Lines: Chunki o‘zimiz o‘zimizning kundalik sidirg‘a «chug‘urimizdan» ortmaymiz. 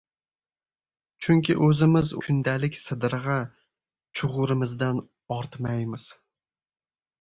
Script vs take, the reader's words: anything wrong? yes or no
yes